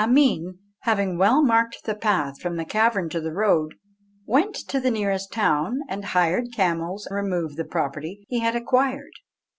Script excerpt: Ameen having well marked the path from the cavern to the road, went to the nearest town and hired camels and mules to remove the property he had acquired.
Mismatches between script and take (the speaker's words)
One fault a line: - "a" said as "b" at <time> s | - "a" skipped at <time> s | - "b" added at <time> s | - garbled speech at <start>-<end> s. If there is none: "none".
- "and mules to" skipped at 7.1 s